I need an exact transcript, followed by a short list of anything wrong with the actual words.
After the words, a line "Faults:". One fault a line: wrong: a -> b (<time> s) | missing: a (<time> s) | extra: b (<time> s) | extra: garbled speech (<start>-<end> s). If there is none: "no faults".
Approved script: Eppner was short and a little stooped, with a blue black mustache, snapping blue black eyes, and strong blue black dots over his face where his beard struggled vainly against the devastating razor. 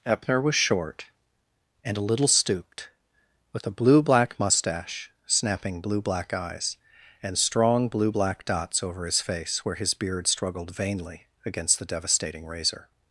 Eppner was short and a little stooped, with a blue black mustache, snapping blue black eyes, and strong blue black dots over his face where his beard struggled vainly against the devastating razor.
Faults:
no faults